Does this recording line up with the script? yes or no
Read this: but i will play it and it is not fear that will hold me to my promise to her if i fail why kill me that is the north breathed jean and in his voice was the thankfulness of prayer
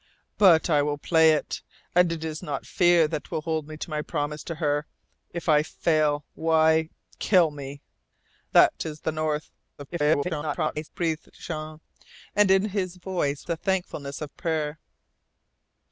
no